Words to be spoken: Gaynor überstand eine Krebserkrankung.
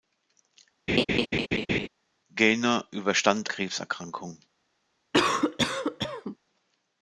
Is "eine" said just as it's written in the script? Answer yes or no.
no